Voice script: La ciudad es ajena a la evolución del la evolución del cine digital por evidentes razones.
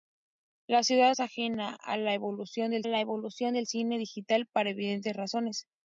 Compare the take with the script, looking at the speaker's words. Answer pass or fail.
pass